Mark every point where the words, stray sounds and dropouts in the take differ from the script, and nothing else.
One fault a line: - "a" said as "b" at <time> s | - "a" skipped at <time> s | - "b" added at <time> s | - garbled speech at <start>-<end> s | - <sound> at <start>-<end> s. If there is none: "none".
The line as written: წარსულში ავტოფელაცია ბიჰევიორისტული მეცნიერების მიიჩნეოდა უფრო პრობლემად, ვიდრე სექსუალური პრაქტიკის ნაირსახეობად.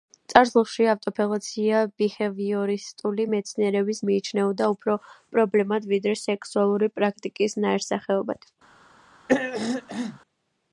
- throat clearing at 9.3-10.2 s